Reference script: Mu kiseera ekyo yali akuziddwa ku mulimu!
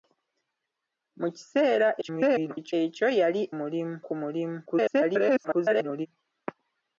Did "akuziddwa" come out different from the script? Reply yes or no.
yes